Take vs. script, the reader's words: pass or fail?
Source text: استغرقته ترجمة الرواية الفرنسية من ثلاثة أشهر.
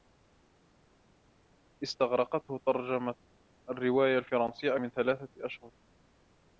pass